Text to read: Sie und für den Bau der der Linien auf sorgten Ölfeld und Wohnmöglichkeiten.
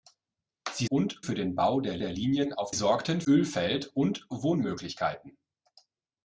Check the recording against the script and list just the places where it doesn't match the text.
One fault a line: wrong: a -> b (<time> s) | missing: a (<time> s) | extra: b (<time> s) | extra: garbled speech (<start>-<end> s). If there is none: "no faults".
no faults